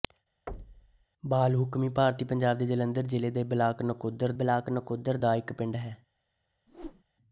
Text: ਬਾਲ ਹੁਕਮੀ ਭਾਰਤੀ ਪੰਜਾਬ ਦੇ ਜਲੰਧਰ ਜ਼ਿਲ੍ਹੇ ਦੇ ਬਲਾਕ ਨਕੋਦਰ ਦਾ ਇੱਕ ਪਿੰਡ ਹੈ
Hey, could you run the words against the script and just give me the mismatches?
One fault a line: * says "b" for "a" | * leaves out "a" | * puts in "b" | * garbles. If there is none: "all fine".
* puts in "ਬਲਾਕ ਨਕੋਦਰ"